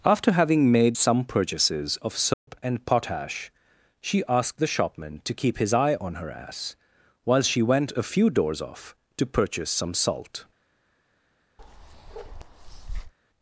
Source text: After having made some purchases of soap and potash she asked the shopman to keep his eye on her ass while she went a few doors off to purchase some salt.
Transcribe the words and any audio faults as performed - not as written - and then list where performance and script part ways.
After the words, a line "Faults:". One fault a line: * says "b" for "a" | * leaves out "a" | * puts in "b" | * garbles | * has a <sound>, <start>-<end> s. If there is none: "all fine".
After having made some purchases of soap and potash she asked the shopman to keep his eye on her ass while she went a few doors off to purchase some salt.
Faults:
* has a dropout, 2.3-2.5 s
* has a bark, 11.6-13.1 s